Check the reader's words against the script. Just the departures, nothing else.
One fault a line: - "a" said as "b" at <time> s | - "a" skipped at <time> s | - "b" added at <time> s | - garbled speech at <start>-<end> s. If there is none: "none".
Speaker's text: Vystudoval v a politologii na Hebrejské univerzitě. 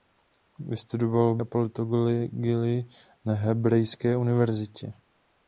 none